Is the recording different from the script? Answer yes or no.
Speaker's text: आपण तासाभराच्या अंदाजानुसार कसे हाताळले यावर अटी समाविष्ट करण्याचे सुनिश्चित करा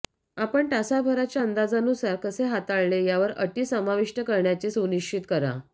no